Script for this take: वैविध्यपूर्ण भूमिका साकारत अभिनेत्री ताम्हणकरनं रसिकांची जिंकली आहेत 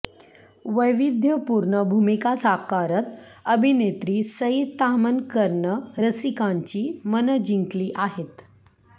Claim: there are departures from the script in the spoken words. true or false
true